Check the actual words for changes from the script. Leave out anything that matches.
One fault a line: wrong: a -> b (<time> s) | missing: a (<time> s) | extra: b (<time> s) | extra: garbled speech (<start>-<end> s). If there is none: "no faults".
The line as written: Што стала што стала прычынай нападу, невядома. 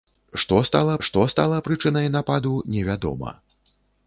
no faults